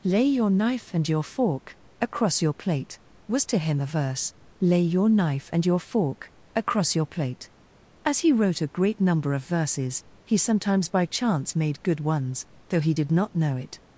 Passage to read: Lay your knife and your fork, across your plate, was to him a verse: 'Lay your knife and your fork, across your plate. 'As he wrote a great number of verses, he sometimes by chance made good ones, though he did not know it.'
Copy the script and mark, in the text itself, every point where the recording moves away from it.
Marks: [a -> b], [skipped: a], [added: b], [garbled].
Lay your knife and your fork, across your plate, was to him a verse: 'Lay your knife and your fork, across your plate. 'As he wrote a great number of verses, he sometimes by chance made good ones, though he did not know it.'